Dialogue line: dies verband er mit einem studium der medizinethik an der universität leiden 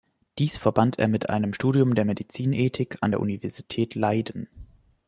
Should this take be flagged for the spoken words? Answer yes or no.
no